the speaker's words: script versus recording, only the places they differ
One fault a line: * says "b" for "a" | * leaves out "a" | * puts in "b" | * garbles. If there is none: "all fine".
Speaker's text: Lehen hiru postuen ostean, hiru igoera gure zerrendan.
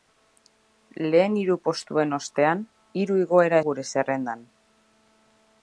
all fine